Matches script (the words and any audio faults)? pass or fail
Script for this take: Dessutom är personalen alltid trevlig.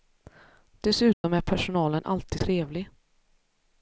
fail